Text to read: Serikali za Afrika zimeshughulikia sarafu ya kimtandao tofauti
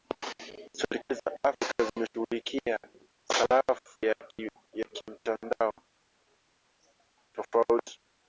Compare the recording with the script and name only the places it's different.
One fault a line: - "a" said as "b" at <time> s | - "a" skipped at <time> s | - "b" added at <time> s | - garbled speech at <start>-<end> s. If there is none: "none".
none